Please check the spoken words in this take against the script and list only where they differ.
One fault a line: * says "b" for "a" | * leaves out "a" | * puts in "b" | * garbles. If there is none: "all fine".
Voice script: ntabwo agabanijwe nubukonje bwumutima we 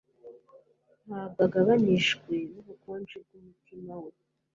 all fine